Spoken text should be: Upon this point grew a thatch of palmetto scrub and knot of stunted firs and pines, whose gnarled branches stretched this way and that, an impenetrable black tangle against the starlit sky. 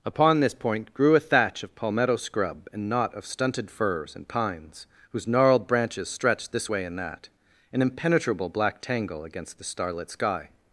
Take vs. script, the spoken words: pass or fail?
pass